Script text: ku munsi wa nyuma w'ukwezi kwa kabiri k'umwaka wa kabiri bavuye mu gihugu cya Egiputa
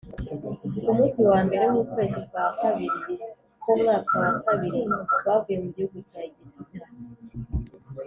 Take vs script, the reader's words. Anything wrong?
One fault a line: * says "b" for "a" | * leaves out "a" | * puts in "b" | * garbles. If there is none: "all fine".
* says "mbere" for "nyuma"